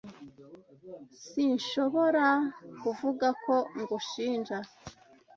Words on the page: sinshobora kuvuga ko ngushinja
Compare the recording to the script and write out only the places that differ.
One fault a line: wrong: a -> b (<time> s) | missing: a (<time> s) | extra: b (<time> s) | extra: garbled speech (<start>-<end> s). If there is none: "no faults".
no faults